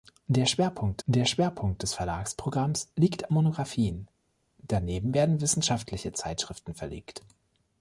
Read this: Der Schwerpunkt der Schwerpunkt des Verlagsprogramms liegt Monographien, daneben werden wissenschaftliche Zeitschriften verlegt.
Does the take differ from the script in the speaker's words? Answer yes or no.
no